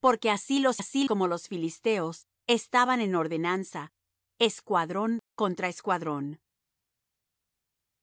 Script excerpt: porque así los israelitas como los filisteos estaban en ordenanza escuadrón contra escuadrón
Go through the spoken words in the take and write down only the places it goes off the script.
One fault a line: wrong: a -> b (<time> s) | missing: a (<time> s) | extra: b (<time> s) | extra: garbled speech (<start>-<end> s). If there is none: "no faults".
wrong: israelitas -> así (0.8 s)